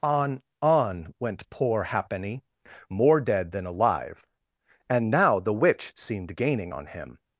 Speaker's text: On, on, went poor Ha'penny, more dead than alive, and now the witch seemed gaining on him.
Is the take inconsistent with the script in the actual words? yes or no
no